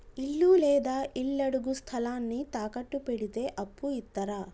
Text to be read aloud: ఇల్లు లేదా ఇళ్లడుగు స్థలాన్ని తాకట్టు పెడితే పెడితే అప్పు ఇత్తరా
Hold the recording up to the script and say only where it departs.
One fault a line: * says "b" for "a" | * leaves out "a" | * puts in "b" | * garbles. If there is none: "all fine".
* leaves out "పెడితే"